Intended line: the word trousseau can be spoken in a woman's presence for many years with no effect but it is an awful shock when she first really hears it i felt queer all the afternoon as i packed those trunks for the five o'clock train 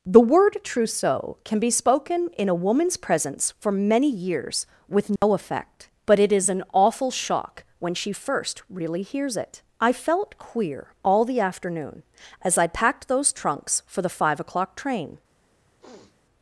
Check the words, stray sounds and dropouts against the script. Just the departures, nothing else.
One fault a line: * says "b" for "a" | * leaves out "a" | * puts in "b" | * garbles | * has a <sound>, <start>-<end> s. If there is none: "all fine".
* has a dropout, 5.2-5.2 s
* has a sniff, 15.8-16.2 s